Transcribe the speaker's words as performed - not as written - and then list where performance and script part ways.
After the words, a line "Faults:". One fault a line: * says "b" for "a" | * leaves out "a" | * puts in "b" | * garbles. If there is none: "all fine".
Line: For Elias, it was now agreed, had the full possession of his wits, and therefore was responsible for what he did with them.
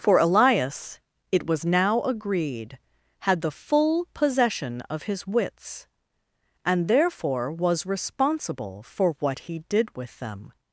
For Elias, it was now agreed, had the full possession of his wits, and therefore was responsible for what he did with them.
Faults:
all fine